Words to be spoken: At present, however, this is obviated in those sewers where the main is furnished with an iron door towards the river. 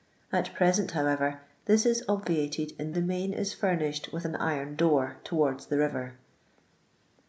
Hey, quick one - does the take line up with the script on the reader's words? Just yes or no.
no